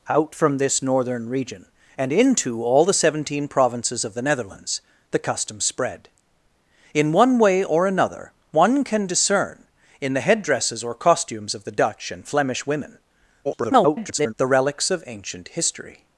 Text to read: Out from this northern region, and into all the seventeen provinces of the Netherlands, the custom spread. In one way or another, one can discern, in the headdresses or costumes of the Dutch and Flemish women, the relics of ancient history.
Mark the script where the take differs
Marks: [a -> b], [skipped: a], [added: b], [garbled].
Out from this northern region, and into all the seventeen provinces of the Netherlands, the custom spread. In one way or another, one can discern, in the headdresses or costumes of the Dutch and Flemish women, [garbled] the relics of ancient history.